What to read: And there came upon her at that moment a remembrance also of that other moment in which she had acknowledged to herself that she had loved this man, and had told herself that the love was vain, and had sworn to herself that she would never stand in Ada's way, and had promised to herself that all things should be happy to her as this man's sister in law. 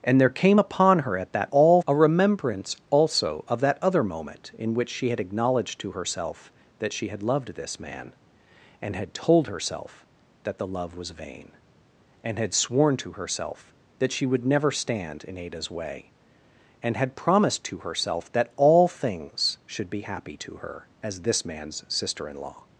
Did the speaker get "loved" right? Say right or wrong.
right